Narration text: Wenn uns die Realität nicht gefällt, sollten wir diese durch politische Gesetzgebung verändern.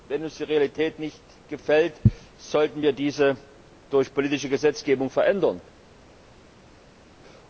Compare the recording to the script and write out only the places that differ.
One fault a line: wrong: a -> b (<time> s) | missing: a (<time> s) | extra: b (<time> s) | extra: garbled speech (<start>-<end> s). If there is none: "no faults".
no faults